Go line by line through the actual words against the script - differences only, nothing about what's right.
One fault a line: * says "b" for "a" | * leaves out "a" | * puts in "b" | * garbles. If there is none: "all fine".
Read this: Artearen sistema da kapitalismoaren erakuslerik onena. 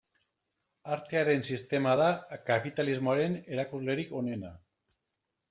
all fine